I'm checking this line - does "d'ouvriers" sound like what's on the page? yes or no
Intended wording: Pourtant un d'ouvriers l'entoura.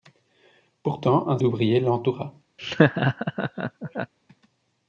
yes